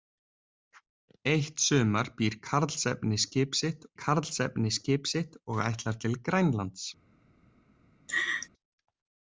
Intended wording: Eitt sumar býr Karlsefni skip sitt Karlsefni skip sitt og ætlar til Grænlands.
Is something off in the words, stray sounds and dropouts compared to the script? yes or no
yes